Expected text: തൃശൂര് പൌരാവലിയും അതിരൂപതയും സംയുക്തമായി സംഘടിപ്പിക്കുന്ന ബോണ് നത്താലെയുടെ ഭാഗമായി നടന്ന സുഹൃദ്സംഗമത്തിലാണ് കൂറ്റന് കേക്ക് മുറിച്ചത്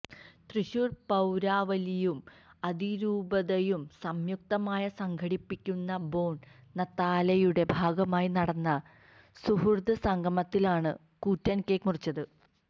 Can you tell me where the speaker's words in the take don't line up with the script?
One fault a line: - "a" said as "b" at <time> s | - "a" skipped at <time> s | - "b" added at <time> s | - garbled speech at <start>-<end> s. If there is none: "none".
none